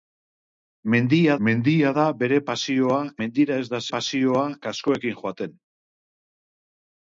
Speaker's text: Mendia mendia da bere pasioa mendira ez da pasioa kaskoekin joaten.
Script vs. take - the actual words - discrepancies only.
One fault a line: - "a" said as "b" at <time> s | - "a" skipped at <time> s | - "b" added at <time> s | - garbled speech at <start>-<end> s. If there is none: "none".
none